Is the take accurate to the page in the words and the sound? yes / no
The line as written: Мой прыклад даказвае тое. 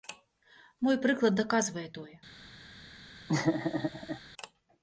no